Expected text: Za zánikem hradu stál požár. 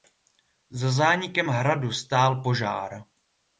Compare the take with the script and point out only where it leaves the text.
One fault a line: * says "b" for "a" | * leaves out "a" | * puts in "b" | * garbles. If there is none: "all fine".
all fine